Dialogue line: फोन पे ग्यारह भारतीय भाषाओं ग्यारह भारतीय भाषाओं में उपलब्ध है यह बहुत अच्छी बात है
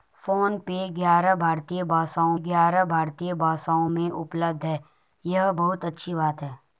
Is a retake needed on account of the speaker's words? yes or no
no